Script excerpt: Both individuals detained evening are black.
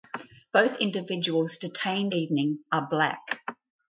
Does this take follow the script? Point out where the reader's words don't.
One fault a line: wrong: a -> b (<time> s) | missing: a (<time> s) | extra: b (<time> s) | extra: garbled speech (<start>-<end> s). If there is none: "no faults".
no faults